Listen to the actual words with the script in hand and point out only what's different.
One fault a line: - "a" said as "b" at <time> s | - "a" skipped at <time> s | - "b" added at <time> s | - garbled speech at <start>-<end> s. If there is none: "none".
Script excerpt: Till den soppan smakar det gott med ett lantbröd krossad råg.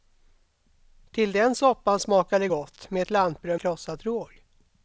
none